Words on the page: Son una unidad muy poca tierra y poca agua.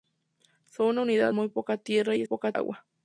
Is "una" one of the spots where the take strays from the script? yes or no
no